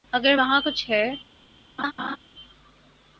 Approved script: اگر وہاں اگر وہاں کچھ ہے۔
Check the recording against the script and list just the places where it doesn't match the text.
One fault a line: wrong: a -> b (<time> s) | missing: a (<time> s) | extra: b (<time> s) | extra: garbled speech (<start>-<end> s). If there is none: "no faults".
missing: اگر وہاں (0.6 s)